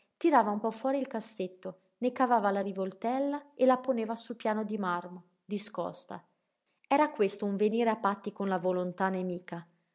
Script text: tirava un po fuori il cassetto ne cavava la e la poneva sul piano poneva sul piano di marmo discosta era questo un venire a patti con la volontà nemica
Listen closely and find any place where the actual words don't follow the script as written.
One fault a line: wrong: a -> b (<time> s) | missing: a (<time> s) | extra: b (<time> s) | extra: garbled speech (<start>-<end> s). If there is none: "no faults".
extra: rivoltella (2.6 s)
missing: poneva sul piano (4.6 s)